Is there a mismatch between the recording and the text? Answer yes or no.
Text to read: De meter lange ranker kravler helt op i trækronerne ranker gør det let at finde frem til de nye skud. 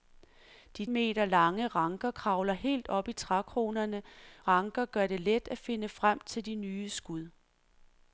no